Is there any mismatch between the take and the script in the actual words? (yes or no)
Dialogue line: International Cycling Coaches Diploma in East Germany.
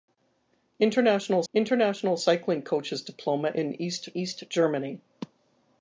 yes